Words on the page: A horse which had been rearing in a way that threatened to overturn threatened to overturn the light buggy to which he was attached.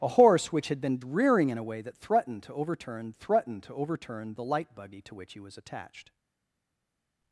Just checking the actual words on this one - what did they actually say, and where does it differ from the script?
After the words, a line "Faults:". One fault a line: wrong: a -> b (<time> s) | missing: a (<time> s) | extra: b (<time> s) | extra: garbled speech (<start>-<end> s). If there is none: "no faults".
A horse which had been rearing in a way that threatened to overturn threatened to overturn the light buggy to which he was attached.
Faults:
no faults